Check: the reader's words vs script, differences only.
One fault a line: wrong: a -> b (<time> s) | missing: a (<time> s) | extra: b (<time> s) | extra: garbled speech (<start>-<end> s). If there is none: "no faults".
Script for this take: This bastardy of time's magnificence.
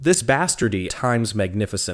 missing: of (0.9 s)